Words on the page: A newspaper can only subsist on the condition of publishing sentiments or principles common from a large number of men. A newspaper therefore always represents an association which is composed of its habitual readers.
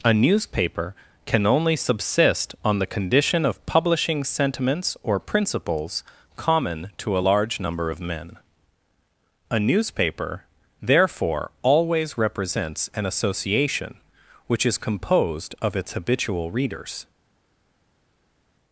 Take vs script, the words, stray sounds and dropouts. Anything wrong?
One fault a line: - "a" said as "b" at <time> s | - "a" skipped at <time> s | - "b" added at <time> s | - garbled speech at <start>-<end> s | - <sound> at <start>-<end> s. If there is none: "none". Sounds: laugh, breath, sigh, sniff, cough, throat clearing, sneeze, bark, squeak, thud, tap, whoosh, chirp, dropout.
- "from" said as "to" at 7.0 s